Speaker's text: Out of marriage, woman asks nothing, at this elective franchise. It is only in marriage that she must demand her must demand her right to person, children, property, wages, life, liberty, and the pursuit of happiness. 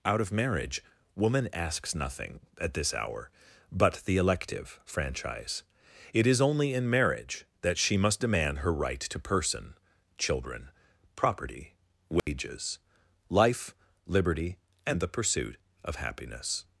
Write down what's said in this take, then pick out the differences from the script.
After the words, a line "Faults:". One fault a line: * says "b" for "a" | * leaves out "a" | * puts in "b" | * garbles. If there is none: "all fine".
Out of marriage, woman asks nothing, at this hour, but the elective franchise. It is only in marriage that she must demand her right to person, children, property, wages, life, liberty, and the pursuit of happiness.
Faults:
* puts in "hour but the"
* leaves out "must demand her"